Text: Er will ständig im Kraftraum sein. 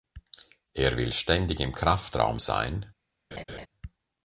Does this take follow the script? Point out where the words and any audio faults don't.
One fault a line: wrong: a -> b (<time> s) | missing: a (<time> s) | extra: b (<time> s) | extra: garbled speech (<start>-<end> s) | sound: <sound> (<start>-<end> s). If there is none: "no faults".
sound: laugh (3.3-3.7 s)